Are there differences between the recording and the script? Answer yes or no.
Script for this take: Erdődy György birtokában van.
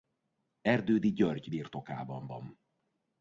no